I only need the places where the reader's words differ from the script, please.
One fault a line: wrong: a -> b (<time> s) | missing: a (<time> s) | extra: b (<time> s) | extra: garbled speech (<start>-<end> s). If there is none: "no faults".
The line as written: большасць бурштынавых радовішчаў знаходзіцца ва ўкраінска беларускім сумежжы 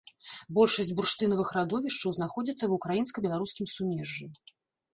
no faults